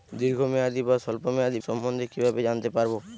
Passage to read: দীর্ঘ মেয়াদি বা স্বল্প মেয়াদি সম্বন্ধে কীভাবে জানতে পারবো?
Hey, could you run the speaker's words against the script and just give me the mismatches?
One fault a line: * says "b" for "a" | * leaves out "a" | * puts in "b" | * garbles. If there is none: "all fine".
all fine